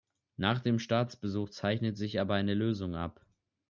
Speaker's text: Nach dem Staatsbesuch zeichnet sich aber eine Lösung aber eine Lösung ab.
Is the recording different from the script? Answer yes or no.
yes